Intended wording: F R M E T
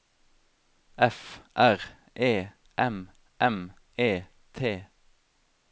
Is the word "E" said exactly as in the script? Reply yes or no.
yes